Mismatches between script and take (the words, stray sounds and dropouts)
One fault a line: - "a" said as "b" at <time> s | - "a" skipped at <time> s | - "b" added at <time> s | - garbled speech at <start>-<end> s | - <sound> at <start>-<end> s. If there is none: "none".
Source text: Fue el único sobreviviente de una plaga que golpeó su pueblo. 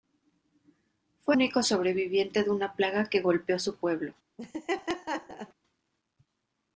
- "el" skipped at 1.4 s
- laugh at 4.4-5.5 s